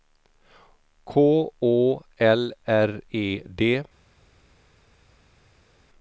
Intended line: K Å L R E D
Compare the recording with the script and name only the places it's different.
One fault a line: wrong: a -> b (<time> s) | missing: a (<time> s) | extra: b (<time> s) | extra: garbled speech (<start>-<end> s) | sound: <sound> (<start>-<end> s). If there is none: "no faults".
no faults